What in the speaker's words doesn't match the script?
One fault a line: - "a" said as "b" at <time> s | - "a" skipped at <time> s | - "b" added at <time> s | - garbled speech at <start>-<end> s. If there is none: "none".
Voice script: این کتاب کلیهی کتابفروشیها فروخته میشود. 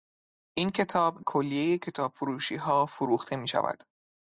none